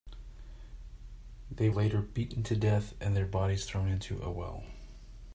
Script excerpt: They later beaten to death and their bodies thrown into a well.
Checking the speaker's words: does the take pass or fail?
pass